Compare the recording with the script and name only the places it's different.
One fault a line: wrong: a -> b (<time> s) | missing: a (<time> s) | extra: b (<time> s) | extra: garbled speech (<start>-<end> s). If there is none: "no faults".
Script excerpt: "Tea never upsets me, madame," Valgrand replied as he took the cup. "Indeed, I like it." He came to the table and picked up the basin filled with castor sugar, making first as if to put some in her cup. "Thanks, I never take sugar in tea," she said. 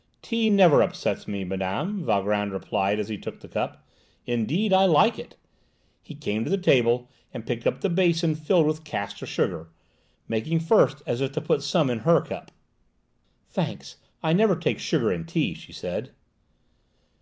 no faults